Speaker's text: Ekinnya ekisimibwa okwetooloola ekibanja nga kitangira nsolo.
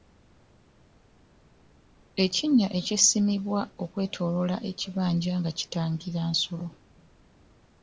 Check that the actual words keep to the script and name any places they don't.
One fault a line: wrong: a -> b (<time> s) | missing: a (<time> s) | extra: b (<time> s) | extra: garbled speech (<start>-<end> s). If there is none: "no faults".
no faults